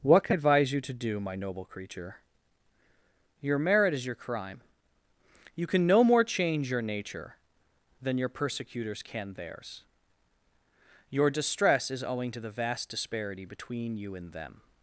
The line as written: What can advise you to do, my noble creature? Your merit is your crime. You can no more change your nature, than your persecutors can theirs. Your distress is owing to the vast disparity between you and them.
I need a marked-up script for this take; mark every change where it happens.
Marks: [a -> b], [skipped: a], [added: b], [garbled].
What can advise you to do, my noble creature? Your merit is your crime. You can no more change your nature, than your persecutors can theirs. Your distress is owing to the vast disparity between you and them.